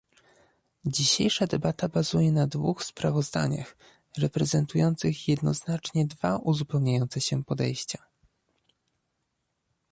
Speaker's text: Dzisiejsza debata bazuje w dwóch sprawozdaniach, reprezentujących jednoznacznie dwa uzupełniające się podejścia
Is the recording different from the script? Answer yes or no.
yes